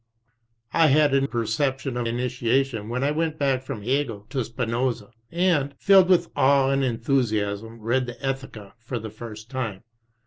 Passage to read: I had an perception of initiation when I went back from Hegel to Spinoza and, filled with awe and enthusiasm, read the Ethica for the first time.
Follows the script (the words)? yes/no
yes